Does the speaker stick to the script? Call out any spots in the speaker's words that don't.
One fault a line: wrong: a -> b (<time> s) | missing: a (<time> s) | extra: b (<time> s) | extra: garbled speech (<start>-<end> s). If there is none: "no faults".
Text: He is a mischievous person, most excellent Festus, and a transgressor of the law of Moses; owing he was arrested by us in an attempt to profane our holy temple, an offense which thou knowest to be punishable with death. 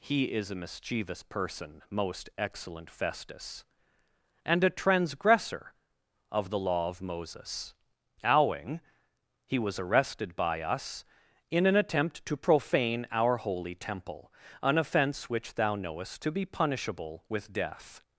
no faults